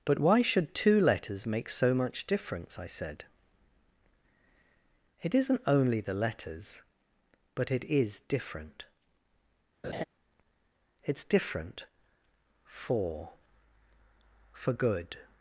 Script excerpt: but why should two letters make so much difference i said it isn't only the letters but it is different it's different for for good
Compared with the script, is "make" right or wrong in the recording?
right